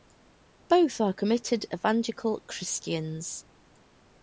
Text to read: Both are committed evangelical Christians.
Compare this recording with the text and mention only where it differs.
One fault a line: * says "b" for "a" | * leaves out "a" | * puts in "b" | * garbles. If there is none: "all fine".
all fine